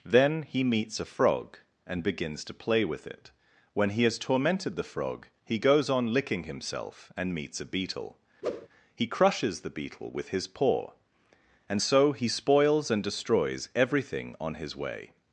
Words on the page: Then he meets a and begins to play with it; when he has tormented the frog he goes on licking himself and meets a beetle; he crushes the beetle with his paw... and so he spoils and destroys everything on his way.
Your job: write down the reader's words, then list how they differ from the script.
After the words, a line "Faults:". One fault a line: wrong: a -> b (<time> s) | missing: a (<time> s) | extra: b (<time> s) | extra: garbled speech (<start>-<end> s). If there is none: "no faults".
Then he meets a frog and begins to play with it; when he has tormented the frog he goes on licking himself and meets a beetle; he crushes the beetle with his paw... and so he spoils and destroys everything on his way.
Faults:
extra: frog (1.1 s)